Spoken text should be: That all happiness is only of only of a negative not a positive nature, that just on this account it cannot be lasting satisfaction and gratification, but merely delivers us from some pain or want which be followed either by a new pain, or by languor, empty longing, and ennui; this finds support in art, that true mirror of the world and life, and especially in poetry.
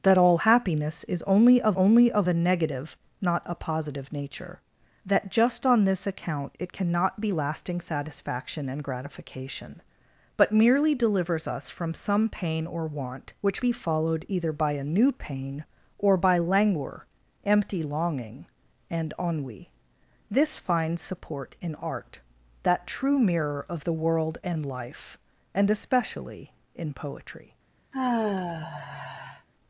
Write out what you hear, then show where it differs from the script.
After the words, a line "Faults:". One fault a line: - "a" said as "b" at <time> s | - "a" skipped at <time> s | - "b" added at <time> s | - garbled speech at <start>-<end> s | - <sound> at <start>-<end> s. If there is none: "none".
That all happiness is only of only of a negative not a positive nature, that just on this account it cannot be lasting satisfaction and gratification, but merely delivers us from some pain or want which be followed either by a new pain, or by languor, empty longing, and ennui; this finds support in art, that true mirror of the world and life, and especially in poetry.
Faults:
- sigh at 27.9-29.5 s